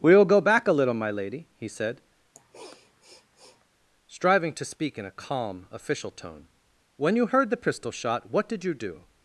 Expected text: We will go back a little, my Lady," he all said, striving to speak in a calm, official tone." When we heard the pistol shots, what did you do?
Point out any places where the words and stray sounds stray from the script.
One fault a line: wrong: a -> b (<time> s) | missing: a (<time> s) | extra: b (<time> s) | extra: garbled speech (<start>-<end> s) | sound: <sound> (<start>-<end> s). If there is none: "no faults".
missing: all (1.7 s)
sound: sniff (2.4-3.7 s)
wrong: we -> you (7.1 s)
wrong: shots -> shot (7.9 s)